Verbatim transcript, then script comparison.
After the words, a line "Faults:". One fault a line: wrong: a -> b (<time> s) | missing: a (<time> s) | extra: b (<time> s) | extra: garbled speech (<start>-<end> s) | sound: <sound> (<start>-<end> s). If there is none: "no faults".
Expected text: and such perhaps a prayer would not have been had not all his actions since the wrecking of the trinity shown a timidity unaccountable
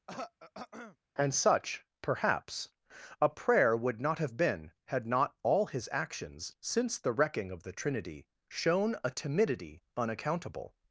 and such perhaps a prayer would not have been had not all his actions since the wrecking of the trinity shown a timidity unaccountable
Faults:
sound: throat clearing (0.1-1.0 s)